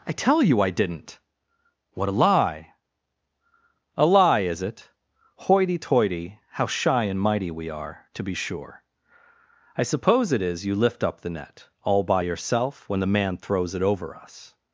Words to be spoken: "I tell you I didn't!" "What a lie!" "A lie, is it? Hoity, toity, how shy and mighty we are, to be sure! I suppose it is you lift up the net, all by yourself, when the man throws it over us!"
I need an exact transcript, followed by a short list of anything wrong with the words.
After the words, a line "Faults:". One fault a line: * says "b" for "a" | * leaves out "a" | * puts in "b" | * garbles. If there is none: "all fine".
"I tell you I didn't!" "What a lie!" "A lie, is it? Hoity, toity, how shy and mighty we are, to be sure! I suppose it is you lift up the net, all by yourself, when the man throws it over us!"
Faults:
all fine